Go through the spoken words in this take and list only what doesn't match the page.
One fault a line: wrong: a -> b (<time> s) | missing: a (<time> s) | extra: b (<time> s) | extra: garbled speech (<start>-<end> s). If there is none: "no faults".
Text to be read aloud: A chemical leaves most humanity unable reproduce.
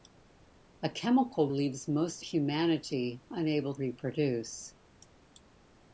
no faults